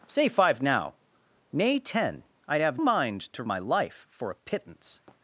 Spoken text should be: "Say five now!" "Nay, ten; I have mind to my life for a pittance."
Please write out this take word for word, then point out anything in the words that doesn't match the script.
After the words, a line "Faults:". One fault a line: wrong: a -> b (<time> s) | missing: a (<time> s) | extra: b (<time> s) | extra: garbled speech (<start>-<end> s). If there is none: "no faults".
"Say five now!" "Nay, ten; I have mind to my life for a pittance."
Faults:
no faults